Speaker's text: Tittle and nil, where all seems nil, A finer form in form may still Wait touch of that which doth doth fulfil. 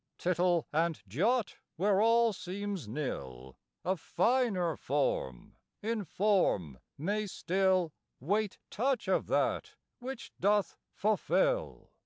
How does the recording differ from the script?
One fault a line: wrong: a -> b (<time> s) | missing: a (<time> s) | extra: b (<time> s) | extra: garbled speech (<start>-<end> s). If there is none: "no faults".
wrong: nil -> jot (1.1 s)
missing: doth (10.8 s)